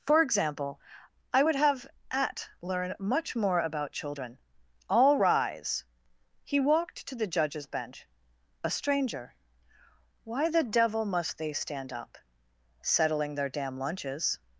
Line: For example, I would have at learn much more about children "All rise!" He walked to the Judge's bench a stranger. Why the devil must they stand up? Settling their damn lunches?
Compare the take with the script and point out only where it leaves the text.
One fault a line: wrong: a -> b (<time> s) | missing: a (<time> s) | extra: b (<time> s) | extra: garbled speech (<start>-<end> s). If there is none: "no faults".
no faults